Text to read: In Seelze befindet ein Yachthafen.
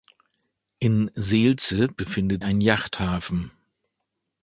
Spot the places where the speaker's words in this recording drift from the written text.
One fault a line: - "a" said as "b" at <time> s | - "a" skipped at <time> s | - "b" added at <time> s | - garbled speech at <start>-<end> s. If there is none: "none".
none